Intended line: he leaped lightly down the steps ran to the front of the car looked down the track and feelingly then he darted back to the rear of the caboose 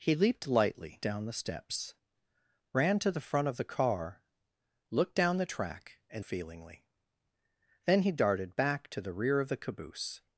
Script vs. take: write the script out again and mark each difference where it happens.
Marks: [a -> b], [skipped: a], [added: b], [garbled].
he leaped lightly down the steps ran to the front of the car looked down the track and feelingly then he darted back to the rear of the caboose